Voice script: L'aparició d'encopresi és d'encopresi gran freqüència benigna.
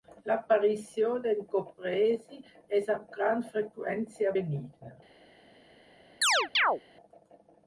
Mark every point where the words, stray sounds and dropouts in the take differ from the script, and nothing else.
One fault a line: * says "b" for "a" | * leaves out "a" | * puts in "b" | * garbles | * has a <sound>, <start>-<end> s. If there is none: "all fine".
* says "amb" for "d'encopresi"
* has a chirp, 6.2-6.8 s